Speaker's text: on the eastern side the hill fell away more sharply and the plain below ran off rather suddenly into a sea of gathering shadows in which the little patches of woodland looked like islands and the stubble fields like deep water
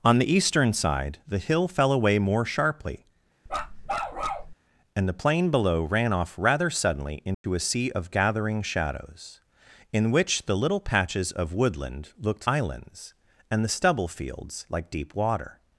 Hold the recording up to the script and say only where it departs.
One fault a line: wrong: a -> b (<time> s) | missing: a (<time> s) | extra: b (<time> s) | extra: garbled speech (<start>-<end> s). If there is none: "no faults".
missing: like (12.5 s)